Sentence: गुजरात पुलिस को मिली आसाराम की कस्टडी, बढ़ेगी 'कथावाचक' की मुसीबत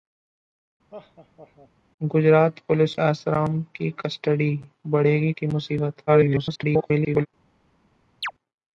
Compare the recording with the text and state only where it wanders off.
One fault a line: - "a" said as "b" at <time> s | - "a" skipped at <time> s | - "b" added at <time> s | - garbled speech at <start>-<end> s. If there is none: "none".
- "को मिली" skipped at 3.0 s
- "कथावाचक" skipped at 5.3 s
- garbled speech at 6.1-7.3 s